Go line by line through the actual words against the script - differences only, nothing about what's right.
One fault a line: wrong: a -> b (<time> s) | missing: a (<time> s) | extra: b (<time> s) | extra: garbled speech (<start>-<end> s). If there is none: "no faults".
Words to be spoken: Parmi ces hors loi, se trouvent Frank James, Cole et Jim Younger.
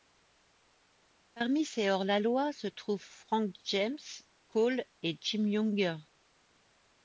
extra: la (2.0 s)